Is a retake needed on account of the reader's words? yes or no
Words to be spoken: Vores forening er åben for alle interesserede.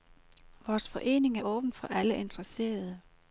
no